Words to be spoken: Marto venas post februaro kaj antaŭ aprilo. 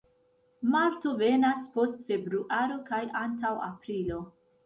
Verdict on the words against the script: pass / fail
pass